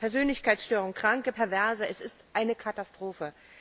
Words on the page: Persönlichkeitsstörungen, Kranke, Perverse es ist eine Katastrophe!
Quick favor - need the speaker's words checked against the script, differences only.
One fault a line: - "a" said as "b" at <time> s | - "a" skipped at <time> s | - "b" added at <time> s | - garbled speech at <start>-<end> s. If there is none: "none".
none